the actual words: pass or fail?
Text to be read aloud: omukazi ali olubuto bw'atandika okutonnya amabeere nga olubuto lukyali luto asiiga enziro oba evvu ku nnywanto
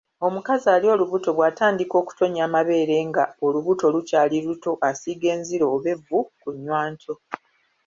pass